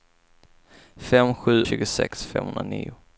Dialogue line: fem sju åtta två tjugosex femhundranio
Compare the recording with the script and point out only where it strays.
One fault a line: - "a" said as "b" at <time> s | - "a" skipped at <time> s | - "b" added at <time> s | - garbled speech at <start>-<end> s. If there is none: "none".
- "åtta två" skipped at 1.6 s